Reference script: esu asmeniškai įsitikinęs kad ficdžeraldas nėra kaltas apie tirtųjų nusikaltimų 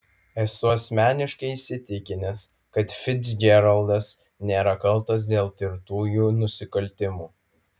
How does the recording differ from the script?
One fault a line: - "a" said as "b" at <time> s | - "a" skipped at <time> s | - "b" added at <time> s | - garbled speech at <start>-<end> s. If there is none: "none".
- "apie" said as "dėl" at 5.3 s